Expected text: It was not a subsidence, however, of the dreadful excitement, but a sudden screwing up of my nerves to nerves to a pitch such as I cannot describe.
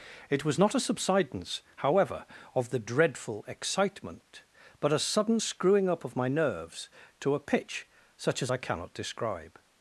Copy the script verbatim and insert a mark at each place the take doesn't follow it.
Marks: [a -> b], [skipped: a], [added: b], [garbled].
It was not a subsidence, however, of the dreadful excitement, but a sudden screwing up of my nerves to [skipped: nerves to] a pitch such as I cannot describe.